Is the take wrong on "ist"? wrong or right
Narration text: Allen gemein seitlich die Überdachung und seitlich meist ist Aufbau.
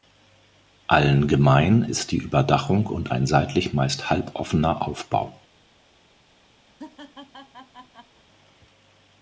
wrong